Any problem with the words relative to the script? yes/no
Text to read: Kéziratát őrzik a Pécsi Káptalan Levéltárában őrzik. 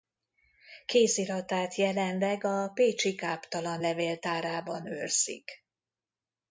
yes